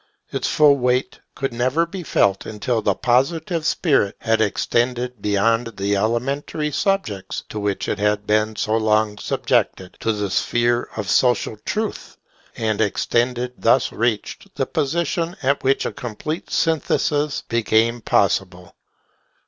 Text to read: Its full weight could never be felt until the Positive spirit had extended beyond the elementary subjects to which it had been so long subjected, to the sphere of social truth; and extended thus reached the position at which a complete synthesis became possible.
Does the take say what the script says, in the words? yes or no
yes